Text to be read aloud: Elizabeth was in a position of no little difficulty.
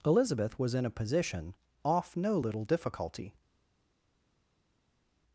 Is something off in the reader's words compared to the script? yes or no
yes